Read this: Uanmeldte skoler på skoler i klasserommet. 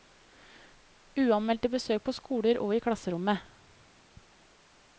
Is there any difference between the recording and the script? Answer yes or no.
yes